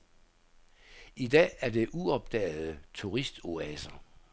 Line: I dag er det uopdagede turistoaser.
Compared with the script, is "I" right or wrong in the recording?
right